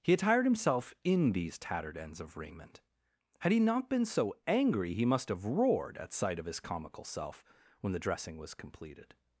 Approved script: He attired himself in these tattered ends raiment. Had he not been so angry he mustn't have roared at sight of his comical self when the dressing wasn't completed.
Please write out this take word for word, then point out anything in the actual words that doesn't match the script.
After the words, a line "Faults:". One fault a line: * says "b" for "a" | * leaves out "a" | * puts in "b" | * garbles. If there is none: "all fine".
He attired himself in these tattered ends of raiment. Had he not been so angry he must have roared at sight of his comical self when the dressing was completed.
Faults:
* puts in "of"
* says "must" for "mustn't"
* says "was" for "wasn't"